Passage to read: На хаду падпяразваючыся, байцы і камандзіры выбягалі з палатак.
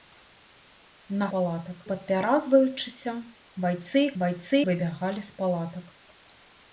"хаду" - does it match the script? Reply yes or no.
no